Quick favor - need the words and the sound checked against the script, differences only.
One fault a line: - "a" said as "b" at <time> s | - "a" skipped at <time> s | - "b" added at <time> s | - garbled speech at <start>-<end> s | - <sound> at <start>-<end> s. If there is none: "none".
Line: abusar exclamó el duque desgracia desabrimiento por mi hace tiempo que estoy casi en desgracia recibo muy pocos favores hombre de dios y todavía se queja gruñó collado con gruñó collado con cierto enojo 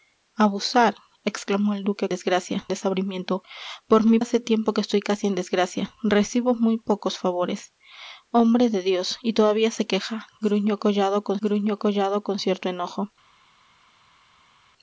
none